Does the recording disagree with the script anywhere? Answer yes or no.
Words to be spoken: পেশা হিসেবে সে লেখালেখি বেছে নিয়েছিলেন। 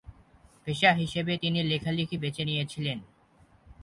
yes